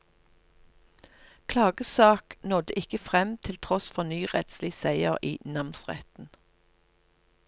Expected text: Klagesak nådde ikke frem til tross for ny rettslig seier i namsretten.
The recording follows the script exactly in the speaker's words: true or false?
true